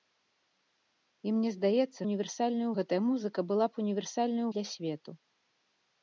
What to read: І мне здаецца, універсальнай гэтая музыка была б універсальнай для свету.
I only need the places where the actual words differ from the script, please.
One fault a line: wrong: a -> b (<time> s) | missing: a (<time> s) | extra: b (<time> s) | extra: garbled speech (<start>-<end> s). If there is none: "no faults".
no faults